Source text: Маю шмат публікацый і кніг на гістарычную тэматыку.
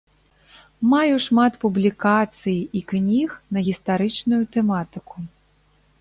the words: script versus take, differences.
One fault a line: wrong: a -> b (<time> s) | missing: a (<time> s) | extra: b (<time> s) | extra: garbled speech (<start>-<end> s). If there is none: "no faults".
no faults